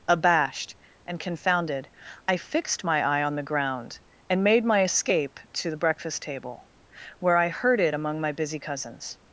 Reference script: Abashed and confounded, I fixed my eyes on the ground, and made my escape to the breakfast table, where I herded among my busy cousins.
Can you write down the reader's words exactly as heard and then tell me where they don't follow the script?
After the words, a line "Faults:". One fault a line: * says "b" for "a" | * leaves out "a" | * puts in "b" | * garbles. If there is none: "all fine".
Abashed and confounded, I fixed my eye on the ground, and made my escape to the breakfast table, where I herded among my busy cousins.
Faults:
* says "eye" for "eyes"